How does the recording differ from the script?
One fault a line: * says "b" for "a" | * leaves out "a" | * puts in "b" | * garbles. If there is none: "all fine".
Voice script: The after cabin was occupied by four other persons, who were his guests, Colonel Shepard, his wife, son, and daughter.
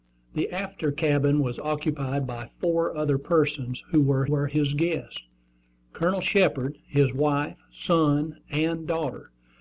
* puts in "were"